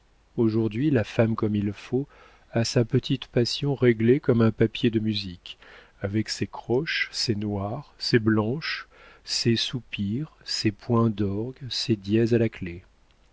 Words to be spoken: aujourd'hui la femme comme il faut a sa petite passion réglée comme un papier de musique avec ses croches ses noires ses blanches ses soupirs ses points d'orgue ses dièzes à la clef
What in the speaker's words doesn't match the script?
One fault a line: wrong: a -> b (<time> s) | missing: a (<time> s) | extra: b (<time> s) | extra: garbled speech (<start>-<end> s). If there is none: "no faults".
no faults